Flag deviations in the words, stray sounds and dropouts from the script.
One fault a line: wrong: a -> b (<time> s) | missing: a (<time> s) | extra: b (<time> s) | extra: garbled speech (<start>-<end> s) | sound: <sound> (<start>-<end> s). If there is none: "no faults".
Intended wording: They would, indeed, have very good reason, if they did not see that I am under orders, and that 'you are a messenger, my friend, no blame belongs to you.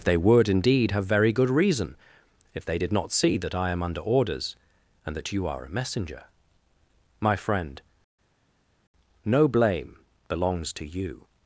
no faults